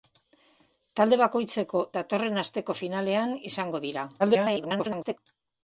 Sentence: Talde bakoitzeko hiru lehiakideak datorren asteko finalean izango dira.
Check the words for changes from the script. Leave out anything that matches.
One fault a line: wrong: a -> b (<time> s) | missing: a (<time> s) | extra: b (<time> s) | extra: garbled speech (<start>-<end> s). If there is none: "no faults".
missing: hiru lehiakideak (1.8 s)
extra: garbled speech (4.2-5.2 s)